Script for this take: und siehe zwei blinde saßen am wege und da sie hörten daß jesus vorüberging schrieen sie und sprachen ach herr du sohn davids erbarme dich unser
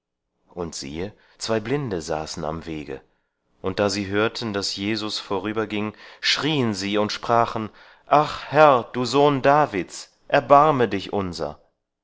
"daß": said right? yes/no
yes